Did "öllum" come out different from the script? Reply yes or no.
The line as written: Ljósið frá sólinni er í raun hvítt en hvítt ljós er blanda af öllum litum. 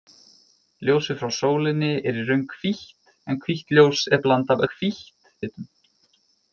yes